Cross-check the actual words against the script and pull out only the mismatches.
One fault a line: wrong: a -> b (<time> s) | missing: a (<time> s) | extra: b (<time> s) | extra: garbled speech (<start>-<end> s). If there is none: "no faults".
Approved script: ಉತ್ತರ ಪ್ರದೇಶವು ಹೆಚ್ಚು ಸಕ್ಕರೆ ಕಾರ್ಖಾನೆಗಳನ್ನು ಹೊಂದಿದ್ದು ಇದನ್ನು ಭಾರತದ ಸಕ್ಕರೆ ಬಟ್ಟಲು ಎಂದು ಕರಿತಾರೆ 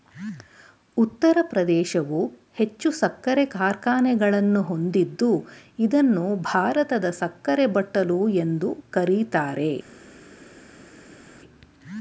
no faults